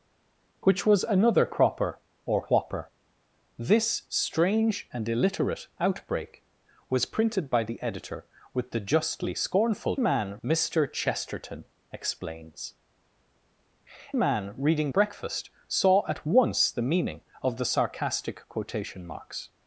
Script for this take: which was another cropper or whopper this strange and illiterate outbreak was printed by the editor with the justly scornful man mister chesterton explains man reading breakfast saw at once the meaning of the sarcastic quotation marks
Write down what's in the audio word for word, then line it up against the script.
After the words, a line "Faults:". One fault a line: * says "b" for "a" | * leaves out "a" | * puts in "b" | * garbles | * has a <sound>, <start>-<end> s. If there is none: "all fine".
which was another cropper or whopper this strange and illiterate outbreak was printed by the editor with the justly scornful man mister chesterton explains man reading breakfast saw at once the meaning of the sarcastic quotation marks
Faults:
all fine